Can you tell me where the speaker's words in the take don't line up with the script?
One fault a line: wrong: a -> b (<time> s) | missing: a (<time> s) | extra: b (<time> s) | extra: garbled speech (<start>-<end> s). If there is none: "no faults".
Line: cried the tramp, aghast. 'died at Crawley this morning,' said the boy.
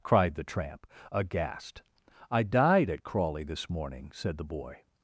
extra: I (2.3 s)